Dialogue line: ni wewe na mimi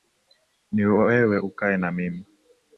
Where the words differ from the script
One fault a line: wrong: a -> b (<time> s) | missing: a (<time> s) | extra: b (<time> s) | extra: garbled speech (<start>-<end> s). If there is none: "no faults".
extra: ukae (1.4 s)